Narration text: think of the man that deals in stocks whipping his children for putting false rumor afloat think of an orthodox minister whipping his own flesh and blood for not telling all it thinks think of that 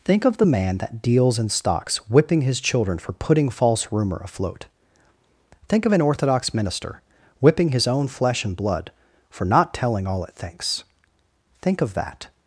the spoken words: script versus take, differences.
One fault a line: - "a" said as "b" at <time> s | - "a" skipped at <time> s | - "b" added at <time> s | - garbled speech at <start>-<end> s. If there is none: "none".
none